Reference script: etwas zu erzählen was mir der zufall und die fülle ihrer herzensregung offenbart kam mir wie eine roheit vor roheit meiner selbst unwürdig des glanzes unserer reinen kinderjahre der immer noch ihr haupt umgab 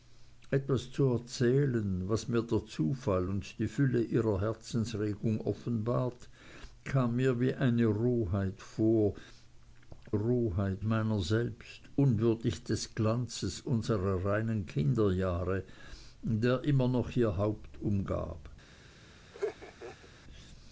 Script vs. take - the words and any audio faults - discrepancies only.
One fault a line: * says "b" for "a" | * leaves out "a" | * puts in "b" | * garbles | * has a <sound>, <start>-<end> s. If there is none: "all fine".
* has a laugh, 19.3-20.1 s